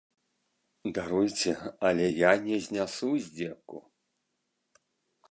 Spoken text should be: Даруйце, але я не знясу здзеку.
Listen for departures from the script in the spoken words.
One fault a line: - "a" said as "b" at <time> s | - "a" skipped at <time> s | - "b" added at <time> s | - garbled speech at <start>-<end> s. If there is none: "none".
none